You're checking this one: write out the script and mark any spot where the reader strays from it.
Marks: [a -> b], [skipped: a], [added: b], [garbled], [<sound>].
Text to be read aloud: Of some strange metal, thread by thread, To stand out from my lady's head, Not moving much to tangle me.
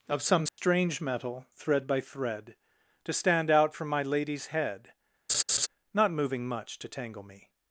Of some strange [dropout] metal, thread by thread, To stand out from my lady's head, [laugh] Not moving much to tangle me.